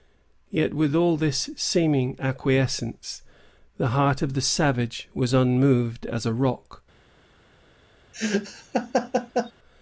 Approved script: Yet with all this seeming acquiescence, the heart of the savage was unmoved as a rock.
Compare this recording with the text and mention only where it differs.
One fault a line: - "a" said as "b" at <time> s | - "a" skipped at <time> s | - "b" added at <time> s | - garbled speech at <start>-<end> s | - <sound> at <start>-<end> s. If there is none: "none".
- laugh at 8.1-9.5 s